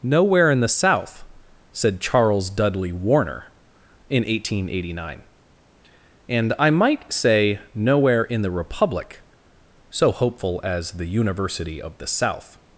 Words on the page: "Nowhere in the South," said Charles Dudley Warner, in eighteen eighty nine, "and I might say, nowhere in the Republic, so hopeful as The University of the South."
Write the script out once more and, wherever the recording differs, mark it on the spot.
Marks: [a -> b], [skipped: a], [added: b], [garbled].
"Nowhere in the South," said Charles Dudley Warner, in eighteen eighty nine, "and I might say, nowhere in the Republic, so hopeful as The University of the South."